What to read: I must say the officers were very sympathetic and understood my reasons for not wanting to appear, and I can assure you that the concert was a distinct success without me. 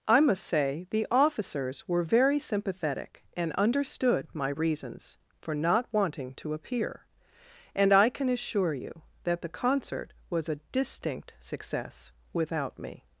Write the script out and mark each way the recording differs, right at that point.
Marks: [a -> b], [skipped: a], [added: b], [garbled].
I must say the officers were very sympathetic and understood my reasons for not wanting to appear, and I can assure you that the concert was a distinct success without me.